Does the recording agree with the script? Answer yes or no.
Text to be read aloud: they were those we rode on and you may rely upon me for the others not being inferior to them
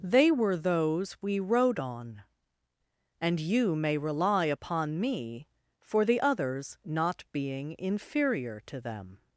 yes